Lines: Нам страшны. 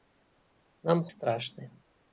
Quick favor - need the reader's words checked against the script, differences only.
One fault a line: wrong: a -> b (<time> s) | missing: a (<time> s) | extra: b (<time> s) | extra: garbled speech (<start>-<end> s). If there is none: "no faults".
no faults